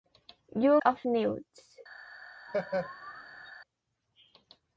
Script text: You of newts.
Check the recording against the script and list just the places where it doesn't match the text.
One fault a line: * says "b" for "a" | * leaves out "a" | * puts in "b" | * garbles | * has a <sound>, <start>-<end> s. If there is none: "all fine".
* has a laugh, 2.5-3.5 s